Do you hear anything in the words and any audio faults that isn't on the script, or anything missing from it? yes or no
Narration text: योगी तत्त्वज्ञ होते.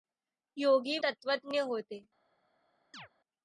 yes